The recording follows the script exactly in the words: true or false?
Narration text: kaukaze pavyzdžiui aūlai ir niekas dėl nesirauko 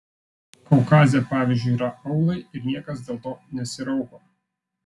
false